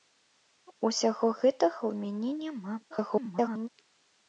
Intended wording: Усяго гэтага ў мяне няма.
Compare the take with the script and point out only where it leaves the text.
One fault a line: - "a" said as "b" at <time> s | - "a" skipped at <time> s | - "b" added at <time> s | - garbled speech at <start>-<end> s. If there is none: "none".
- garbled speech at 2.9-3.7 s